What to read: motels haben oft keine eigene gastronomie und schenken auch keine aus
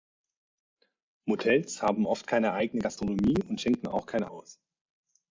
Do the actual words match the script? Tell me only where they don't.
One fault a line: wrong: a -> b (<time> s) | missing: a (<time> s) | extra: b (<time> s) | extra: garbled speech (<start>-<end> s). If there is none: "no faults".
no faults